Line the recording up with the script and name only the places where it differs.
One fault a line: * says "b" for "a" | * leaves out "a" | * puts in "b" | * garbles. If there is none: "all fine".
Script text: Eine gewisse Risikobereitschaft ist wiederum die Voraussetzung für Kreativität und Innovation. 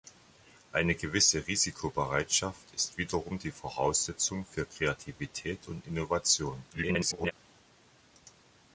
* garbles